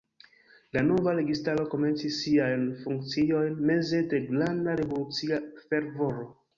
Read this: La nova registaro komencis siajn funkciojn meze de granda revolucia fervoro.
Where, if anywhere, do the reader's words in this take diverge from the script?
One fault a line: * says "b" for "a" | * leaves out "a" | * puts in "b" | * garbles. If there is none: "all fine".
all fine